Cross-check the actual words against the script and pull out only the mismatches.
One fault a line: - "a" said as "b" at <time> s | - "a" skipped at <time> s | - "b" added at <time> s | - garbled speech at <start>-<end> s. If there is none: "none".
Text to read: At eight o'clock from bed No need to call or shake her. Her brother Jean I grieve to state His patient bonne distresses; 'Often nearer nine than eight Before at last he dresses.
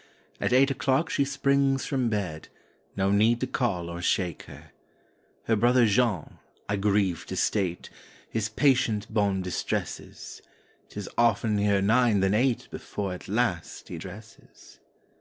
- "she springs" added at 1.1 s
- "Tis" added at 10.9 s